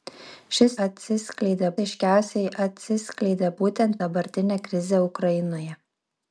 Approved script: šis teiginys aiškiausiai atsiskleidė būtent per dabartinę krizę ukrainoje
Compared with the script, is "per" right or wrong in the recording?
wrong